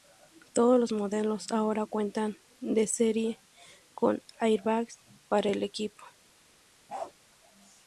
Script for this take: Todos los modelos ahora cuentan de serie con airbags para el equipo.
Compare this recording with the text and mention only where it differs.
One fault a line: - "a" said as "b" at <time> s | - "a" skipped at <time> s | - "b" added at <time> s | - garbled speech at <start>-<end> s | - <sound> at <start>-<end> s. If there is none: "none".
- bark at 6.9-7.1 s